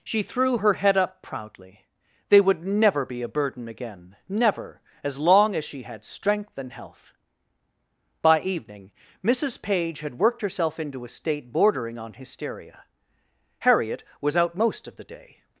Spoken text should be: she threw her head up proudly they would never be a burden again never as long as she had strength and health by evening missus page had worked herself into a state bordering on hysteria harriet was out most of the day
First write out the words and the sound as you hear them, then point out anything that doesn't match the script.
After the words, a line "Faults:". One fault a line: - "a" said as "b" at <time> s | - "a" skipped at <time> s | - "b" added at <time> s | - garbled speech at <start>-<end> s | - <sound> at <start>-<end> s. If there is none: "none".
she threw her head up proudly they would never be a burden again never as long as she had strength and health by evening missus page had worked herself into a state bordering on hysteria harriet was out most of the day
Faults:
none